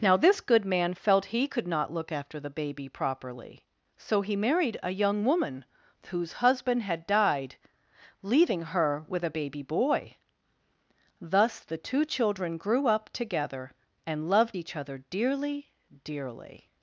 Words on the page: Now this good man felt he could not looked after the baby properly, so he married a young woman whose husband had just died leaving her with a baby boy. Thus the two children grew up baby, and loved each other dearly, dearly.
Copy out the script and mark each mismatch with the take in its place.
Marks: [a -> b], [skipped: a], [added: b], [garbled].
Now this good man felt he could not [looked -> look] after the baby properly, so he married a young woman whose husband had [skipped: just] died leaving her with a baby boy. Thus the two children grew up [baby, -> together] and loved each other dearly, dearly.